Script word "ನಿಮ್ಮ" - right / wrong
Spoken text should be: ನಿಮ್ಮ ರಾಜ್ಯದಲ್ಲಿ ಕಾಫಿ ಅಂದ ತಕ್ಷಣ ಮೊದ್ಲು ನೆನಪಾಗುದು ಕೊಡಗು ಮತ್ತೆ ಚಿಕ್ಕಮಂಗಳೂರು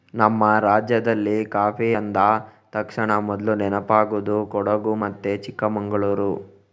wrong